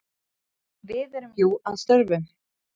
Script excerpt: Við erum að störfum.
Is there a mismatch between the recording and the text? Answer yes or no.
yes